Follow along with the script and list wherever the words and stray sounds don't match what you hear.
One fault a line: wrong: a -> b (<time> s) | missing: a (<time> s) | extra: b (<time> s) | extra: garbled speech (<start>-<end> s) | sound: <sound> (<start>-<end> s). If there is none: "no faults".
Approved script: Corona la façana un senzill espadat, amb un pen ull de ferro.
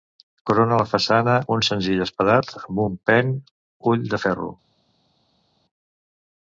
no faults